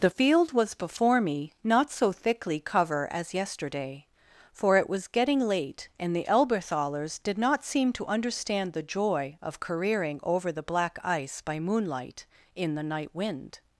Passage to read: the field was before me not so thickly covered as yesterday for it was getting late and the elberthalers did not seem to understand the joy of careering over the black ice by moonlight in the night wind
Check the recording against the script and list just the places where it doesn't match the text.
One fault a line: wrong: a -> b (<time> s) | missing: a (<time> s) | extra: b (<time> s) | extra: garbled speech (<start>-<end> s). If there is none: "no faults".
wrong: covered -> cover (2.6 s)